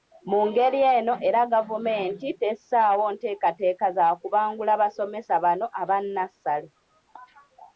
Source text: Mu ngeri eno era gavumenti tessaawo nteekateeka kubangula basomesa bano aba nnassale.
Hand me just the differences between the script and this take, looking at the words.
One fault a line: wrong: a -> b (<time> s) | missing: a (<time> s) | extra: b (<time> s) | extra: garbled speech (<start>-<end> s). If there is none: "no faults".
extra: za (3.9 s)